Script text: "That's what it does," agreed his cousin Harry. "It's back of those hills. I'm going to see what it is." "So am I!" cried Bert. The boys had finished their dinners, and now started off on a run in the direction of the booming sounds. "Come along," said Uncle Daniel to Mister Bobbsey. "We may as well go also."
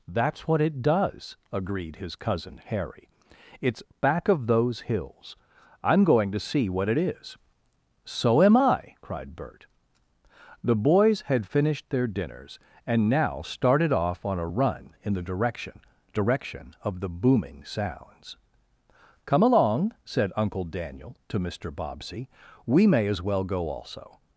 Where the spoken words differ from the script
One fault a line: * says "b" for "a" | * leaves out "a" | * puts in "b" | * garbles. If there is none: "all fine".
* puts in "direction"